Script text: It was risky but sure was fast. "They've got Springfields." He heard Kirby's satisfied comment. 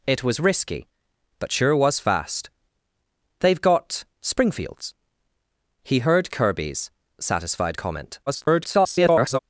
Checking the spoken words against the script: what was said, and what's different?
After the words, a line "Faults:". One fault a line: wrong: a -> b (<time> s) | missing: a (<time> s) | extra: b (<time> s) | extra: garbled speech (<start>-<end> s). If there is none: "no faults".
It was risky but sure was fast. "They've got Springfields." He heard Kirby's satisfied comment. [garbled]
Faults:
extra: garbled speech (8.3-9.4 s)